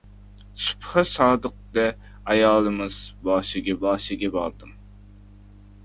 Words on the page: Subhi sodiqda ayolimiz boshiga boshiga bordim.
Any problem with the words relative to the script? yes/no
no